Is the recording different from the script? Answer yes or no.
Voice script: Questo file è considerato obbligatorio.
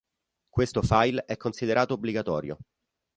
no